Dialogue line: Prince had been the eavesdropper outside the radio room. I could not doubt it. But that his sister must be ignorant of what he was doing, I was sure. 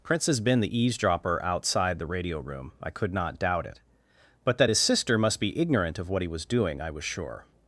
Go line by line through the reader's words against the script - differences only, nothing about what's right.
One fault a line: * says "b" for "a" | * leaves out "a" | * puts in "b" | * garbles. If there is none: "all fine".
* says "has" for "had"